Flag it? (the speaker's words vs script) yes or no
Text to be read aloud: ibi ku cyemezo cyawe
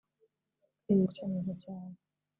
no